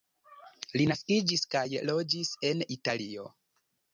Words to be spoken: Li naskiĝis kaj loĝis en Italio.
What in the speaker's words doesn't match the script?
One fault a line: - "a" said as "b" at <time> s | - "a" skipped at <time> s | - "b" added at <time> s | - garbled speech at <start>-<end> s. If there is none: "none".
none